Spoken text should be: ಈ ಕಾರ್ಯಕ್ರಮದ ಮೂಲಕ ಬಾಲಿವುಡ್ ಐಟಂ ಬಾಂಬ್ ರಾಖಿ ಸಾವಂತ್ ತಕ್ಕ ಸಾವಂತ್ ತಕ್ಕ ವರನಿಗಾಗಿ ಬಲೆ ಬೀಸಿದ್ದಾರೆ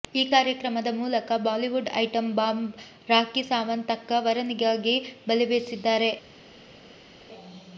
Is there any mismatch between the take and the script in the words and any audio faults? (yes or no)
yes